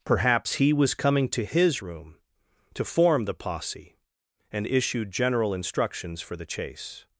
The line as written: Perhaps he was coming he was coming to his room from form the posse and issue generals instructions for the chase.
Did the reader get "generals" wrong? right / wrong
wrong